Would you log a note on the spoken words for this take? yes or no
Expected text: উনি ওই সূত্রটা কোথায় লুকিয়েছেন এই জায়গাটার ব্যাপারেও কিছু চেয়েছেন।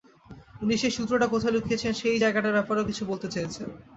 yes